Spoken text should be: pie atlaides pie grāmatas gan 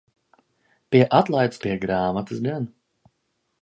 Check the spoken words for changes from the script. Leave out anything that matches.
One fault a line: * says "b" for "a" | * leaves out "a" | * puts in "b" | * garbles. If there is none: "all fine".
all fine